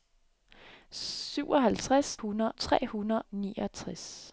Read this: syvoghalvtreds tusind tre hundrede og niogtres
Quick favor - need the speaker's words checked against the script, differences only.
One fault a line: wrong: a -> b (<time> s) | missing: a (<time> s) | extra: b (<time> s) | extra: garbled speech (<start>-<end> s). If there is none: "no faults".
wrong: tusind -> hundrede (2.2 s)
missing: og (3.2 s)